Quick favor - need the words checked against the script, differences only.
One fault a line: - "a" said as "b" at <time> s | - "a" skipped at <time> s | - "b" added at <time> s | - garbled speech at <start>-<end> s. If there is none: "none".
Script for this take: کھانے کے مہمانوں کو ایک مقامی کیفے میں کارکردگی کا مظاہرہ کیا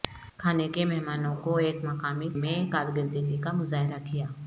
- "کیفے" skipped at 2.3 s